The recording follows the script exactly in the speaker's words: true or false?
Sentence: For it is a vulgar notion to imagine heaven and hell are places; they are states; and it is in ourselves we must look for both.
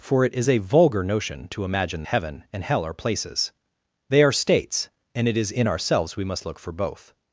true